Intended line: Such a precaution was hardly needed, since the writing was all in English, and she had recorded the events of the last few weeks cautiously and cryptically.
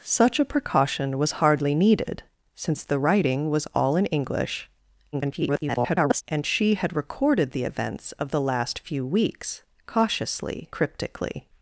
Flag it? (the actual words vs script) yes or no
yes